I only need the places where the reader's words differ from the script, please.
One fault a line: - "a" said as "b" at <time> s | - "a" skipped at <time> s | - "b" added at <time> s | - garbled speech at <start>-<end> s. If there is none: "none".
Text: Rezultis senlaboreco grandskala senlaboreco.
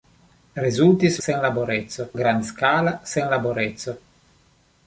none